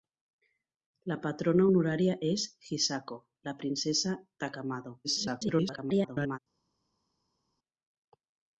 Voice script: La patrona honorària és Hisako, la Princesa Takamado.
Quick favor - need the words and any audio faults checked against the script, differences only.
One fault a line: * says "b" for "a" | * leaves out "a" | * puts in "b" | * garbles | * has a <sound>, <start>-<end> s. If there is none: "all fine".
* garbles